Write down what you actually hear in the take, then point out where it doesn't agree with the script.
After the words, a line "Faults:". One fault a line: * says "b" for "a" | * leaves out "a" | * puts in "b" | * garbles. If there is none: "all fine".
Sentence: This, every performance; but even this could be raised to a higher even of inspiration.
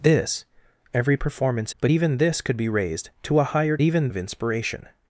This, every performance; but even this could be raised to a higher even of inspiration.
Faults:
all fine